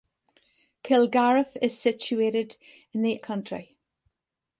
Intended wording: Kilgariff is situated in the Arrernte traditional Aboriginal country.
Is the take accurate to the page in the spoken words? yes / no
no